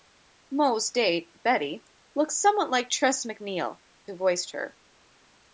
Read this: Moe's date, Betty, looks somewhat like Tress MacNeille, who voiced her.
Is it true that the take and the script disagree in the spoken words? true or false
false